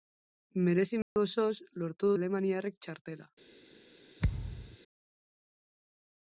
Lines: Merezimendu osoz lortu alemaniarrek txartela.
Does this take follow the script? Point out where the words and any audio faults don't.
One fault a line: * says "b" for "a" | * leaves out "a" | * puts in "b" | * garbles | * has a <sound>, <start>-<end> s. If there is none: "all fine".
* has a dropout, 1.0-1.2 s
* has a thud, 4.2-4.8 s